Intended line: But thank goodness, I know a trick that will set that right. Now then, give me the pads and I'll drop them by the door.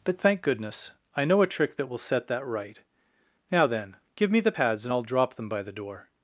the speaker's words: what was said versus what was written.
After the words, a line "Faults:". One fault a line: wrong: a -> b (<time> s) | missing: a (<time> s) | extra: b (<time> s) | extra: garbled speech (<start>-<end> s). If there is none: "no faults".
But thank goodness, I know a trick that will set that right. Now then, give me the pads and I'll drop them by the door.
Faults:
no faults